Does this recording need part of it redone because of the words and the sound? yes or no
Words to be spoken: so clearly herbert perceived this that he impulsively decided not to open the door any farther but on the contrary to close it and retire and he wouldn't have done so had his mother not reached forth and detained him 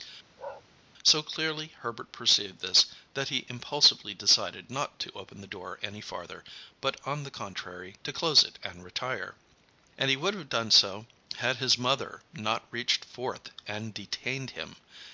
yes